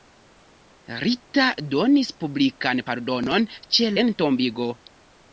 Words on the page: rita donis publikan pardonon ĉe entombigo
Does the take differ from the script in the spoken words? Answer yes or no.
no